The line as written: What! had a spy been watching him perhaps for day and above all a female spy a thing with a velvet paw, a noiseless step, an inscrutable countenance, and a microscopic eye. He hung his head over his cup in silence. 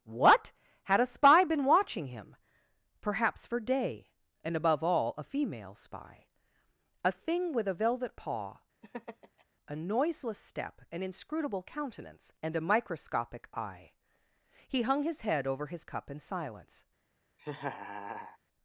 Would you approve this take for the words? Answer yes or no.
yes